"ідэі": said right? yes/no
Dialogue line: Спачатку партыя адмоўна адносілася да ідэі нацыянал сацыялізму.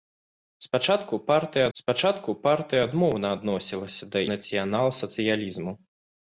no